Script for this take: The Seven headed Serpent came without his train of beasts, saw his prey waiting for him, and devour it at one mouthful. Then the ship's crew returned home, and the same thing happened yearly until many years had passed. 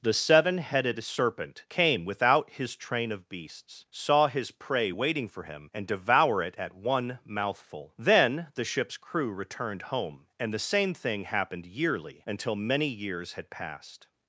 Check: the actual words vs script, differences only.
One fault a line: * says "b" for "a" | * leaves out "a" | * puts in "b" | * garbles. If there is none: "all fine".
all fine